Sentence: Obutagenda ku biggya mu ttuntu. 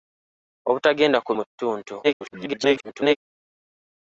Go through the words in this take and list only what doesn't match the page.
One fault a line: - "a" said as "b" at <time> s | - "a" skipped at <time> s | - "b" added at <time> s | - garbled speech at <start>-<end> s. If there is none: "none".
- "biggya" skipped at 1.3 s
- garbled speech at 2.0-3.2 s